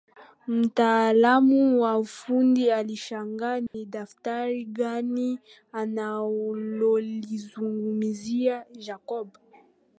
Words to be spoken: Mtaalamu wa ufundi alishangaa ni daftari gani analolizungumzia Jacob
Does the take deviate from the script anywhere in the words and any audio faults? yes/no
yes